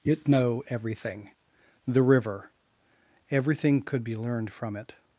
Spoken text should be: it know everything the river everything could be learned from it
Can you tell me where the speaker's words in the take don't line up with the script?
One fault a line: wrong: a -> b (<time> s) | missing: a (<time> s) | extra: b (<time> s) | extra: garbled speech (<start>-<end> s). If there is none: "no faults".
no faults